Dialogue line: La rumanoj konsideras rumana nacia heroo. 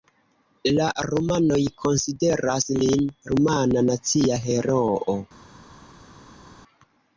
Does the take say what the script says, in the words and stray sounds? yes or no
no